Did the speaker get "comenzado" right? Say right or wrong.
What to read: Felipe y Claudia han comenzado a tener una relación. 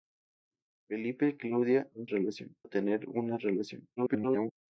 wrong